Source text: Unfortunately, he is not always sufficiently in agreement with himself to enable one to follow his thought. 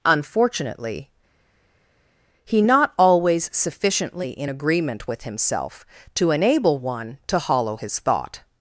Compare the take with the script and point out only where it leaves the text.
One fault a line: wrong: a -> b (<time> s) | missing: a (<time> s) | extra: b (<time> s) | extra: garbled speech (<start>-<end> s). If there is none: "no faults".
missing: is (2.6 s)
wrong: follow -> hollow (7.4 s)